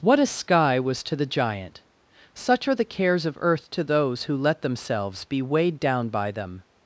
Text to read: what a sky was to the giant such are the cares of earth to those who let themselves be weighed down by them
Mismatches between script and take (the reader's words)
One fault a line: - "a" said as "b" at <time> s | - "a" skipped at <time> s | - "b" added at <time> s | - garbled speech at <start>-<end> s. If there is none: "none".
none